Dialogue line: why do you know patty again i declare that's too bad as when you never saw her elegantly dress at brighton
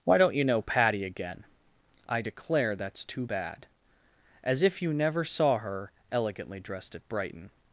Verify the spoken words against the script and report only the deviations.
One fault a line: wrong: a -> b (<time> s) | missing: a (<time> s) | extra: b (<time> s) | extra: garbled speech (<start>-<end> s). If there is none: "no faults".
wrong: do -> don't (0.2 s)
wrong: when -> if (4.6 s)
wrong: dress -> dressed (6.6 s)